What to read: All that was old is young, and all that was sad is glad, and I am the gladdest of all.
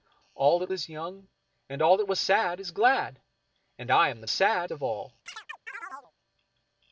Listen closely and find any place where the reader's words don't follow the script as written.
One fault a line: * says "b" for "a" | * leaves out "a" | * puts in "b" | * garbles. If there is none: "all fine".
* leaves out "was old"
* says "sad" for "gladdest"